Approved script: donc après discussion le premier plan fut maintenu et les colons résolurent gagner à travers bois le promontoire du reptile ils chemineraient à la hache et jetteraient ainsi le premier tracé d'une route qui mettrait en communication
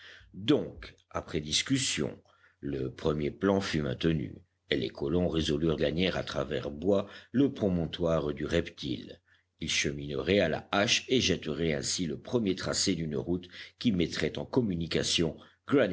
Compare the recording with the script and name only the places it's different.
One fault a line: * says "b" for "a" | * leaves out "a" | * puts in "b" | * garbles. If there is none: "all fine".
all fine